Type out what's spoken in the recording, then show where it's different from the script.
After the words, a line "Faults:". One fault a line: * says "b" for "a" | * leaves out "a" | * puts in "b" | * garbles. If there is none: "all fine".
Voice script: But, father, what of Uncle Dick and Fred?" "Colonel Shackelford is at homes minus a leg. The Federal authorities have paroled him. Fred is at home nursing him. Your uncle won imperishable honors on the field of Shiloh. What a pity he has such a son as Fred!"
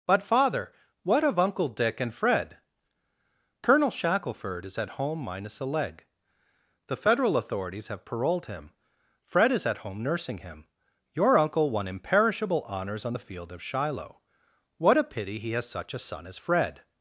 But, father, what of Uncle Dick and Fred?" "Colonel Shackelford is at home minus a leg. The Federal authorities have paroled him. Fred is at home nursing him. Your uncle won imperishable honors on the field of Shiloh. What a pity he has such a son as Fred!"
Faults:
* says "home" for "homes"